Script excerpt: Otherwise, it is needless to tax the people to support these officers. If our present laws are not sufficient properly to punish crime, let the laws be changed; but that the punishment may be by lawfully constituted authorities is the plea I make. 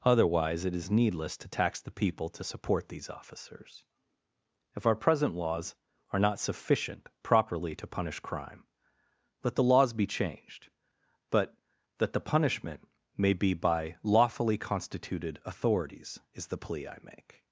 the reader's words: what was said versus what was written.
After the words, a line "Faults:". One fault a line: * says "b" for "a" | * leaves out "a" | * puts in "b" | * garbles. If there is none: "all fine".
Otherwise, it is needless to tax the people to support these officers. If our present laws are not sufficient properly to punish crime, let the laws be changed; but that the punishment may be by lawfully constituted authorities is the plea I make.
Faults:
all fine